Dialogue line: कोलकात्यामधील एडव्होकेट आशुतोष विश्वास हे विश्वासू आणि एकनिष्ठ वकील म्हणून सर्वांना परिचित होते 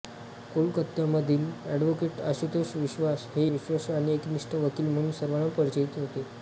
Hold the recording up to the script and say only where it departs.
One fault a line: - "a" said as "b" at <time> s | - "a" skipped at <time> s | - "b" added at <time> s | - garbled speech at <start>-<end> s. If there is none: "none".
none